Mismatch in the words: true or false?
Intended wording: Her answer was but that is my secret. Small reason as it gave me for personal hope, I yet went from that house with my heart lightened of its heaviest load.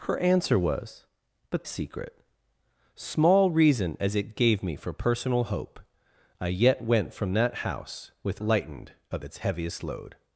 true